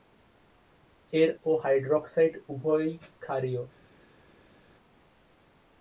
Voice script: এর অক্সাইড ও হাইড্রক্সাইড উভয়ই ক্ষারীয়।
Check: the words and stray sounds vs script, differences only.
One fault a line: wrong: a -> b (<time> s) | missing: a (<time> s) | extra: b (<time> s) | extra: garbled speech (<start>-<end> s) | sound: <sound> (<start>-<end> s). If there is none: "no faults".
missing: অক্সাইড (1.3 s)